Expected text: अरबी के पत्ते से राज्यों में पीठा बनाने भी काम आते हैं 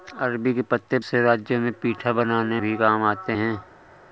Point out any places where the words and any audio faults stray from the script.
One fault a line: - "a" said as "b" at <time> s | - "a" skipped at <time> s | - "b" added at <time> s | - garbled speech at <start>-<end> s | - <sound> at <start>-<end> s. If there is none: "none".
none